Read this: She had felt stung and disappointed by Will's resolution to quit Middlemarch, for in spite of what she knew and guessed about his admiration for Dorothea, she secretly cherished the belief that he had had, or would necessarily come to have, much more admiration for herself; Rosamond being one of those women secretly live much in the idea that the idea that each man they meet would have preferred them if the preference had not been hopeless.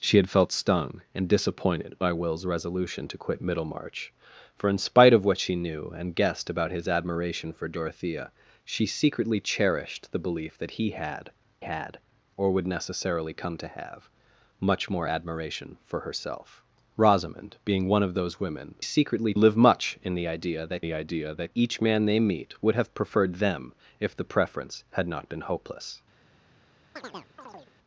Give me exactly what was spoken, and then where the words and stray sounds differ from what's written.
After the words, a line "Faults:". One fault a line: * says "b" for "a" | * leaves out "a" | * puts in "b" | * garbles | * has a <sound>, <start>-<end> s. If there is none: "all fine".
She had felt stung and disappointed by Will's resolution to quit Middlemarch, for in spite of what she knew and guessed about his admiration for Dorothea, she secretly cherished the belief that he had had, or would necessarily come to have, much more admiration for herself; Rosamond being one of those women secretly live much in the idea that the idea that each man they meet would have preferred them if the preference had not been hopeless.
Faults:
* has a chirp, 27.0-27.7 s